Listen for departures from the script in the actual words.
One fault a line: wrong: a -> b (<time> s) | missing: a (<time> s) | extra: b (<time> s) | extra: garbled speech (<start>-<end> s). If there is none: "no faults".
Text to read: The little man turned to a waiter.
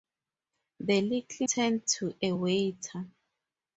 missing: man (1.5 s)